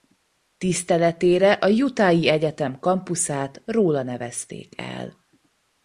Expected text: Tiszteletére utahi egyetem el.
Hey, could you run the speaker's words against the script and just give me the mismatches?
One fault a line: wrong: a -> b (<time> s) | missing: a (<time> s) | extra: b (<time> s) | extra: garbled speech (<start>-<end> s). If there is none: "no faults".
extra: a (1.5 s)
extra: kampuszát róla nevezték (2.8 s)